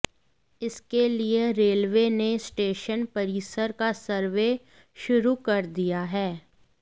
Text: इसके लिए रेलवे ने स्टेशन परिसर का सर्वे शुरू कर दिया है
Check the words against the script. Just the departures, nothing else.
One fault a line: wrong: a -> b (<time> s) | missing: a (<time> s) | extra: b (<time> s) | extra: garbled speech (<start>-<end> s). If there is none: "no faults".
no faults